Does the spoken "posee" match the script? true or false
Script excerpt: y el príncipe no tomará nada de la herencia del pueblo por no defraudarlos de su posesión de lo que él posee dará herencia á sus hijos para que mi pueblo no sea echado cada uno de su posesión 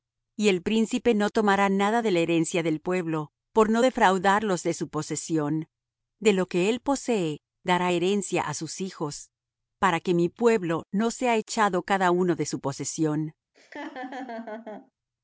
true